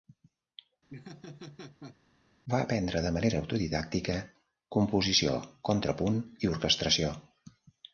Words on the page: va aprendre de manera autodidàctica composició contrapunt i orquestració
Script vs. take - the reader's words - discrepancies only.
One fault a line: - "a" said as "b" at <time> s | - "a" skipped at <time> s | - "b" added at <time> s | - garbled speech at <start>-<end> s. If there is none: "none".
none